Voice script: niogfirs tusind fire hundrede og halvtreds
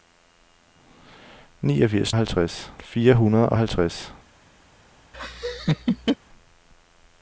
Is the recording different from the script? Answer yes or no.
yes